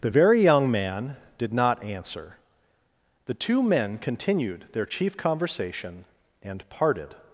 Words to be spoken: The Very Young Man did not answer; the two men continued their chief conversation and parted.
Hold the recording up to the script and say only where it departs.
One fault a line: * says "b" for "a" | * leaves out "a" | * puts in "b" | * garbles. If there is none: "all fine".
all fine